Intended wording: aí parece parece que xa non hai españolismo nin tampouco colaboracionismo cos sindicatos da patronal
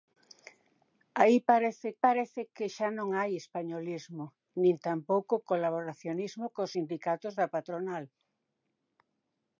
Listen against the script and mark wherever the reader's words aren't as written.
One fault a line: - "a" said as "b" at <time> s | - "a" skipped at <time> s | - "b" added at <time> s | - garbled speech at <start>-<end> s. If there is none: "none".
none